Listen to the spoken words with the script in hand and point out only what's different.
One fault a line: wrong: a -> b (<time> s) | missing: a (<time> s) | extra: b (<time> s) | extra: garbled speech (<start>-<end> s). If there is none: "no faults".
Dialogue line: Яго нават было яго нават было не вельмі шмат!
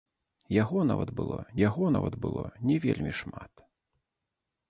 no faults